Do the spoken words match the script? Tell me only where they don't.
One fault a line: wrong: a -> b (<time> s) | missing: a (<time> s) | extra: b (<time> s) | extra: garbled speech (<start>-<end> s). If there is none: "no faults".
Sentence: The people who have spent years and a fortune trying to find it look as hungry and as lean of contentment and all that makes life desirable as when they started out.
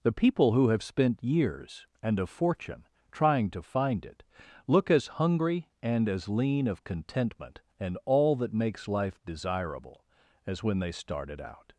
no faults